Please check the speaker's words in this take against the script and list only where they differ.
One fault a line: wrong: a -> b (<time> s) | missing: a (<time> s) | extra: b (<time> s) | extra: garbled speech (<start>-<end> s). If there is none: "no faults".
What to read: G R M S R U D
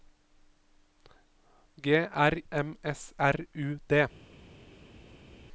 no faults